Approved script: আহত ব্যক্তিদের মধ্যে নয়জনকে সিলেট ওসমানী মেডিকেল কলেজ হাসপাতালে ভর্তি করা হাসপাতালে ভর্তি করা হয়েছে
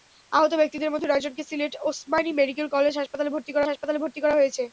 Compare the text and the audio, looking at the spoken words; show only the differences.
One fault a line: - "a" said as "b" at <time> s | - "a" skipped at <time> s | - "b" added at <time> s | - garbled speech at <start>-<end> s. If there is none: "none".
none